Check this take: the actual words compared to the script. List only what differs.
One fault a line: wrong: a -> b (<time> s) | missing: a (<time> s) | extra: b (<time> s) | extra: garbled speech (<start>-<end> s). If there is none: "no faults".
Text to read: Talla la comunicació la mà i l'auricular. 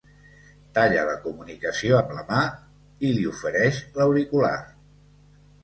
extra: amb (2.0 s)
extra: li ofereix (3.2 s)